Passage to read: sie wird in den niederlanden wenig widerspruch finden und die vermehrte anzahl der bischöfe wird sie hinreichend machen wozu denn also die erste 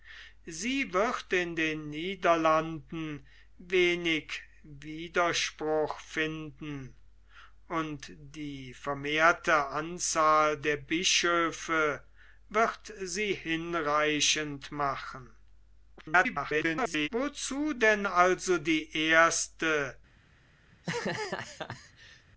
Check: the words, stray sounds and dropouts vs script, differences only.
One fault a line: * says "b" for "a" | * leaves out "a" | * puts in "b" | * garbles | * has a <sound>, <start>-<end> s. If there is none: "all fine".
* garbles
* has a laugh, 20.7-22.3 s